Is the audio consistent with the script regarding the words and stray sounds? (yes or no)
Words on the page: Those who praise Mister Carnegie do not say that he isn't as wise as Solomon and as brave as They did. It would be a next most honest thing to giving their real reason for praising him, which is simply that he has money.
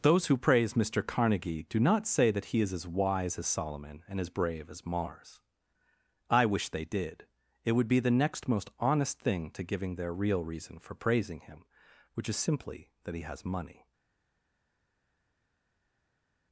no